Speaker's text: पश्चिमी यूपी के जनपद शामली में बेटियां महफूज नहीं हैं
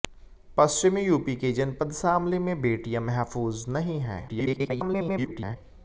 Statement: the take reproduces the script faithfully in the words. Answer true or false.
false